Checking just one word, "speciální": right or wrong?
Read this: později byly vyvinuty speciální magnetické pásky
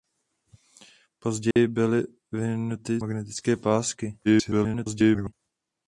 wrong